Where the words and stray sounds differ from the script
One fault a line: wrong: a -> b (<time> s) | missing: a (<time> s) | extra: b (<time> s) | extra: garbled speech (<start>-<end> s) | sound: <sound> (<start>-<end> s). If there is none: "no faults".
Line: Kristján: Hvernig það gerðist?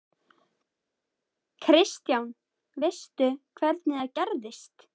extra: Veistu (2.8 s)